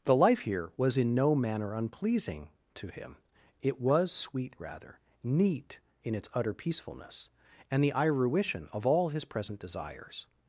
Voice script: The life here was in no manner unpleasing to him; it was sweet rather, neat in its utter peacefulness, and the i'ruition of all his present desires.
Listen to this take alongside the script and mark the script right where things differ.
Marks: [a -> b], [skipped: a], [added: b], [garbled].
The life here was in no manner unpleasing to him; it was sweet rather, neat in its utter peacefulness, and the i'ruition of all his present desires.